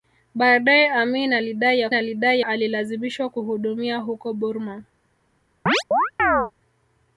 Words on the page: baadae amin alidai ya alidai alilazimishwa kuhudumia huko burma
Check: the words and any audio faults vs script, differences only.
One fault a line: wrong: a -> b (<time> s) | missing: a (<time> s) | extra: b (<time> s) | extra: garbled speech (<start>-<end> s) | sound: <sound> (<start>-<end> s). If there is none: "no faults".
sound: chirp (5.7-6.5 s)